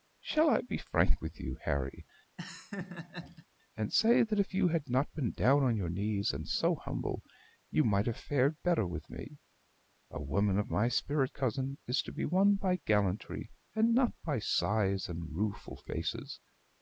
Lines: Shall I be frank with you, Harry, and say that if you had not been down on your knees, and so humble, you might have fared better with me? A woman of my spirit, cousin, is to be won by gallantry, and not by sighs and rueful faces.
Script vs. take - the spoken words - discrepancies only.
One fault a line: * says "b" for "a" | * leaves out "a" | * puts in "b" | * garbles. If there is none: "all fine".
all fine